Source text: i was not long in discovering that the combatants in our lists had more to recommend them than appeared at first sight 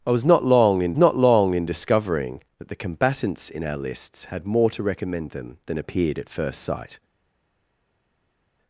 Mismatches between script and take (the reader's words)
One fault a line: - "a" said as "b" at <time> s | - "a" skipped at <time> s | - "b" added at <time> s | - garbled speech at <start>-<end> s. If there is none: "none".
- "not long in" added at 1.0 s